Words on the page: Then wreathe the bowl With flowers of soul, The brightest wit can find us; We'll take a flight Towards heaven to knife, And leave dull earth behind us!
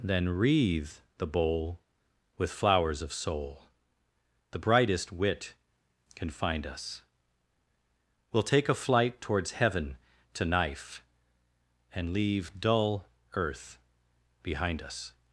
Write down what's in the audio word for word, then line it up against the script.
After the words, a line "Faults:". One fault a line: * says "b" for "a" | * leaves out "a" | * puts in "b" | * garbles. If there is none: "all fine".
Then wreathe the bowl With flowers of soul, The brightest wit can find us; We'll take a flight Towards heaven to knife, And leave dull earth behind us!
Faults:
all fine